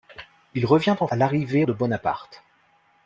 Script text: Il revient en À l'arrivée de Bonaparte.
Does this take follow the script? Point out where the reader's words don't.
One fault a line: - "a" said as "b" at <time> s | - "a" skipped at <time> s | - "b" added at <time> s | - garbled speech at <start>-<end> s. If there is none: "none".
none